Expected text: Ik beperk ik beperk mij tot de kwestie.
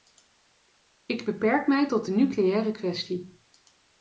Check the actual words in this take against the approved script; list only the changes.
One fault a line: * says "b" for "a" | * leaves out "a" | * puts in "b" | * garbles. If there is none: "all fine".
* leaves out "ik beperk"
* puts in "nucleaire"